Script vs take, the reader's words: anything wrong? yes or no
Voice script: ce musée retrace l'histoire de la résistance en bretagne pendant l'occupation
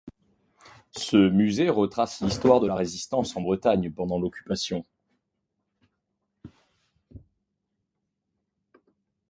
no